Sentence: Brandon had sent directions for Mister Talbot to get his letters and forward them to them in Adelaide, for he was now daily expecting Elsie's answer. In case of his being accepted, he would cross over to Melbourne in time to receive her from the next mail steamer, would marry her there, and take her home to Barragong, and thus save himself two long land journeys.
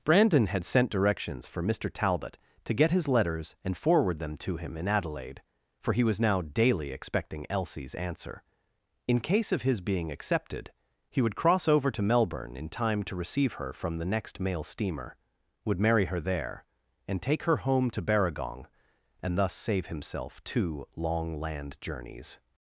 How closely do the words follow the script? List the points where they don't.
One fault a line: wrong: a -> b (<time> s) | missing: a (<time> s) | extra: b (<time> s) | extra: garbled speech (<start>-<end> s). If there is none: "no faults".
wrong: them -> him (4.6 s)